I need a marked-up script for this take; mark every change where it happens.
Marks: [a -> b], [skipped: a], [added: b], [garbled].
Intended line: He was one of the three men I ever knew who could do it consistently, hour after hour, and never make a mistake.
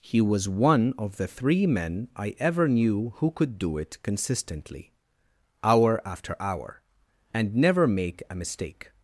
He was one of the three men I ever knew who could do it consistently, hour after hour, and never make a mistake.